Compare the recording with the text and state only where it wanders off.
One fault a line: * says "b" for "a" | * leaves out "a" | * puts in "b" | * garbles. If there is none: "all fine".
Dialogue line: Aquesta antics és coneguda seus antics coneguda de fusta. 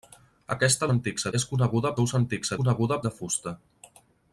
all fine